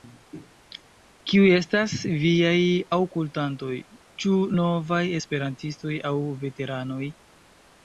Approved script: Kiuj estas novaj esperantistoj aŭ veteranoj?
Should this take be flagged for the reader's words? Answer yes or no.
yes